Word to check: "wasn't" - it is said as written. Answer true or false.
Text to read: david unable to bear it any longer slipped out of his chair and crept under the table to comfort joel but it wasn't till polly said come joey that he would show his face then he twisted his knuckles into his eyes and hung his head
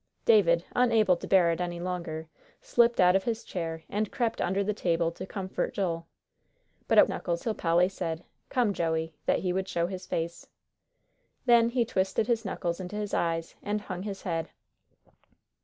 false